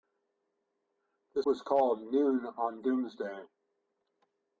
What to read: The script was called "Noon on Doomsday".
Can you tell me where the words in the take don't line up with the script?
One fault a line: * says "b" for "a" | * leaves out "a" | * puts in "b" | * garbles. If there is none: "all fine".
* leaves out "script"